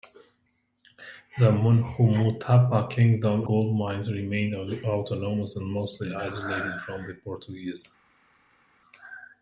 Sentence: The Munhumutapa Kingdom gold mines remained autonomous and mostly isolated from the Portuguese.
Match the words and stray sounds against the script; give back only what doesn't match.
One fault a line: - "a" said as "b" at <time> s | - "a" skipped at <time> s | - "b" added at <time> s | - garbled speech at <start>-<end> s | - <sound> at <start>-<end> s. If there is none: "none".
none